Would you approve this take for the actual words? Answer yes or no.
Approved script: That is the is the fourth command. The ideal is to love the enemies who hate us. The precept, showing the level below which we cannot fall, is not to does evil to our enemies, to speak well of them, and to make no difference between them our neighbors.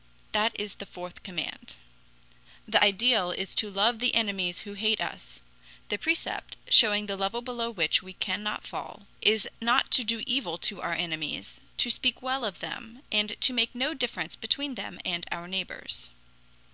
no